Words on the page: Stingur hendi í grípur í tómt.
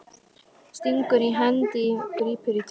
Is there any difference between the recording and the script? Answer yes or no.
no